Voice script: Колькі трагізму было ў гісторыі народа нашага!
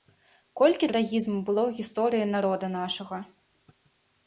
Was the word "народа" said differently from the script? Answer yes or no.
no